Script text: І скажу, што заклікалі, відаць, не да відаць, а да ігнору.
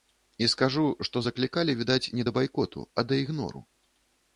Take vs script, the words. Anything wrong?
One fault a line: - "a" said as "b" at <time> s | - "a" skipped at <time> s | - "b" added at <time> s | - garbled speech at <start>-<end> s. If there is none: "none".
- "відаць" said as "байкоту" at 2.4 s